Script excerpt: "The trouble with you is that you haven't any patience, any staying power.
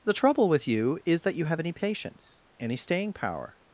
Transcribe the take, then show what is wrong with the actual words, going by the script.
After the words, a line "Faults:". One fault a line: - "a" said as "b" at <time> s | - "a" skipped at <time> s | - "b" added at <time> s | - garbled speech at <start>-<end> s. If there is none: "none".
"The trouble with you is that you have any patience, any staying power.
Faults:
- "haven't" said as "have" at 1.4 s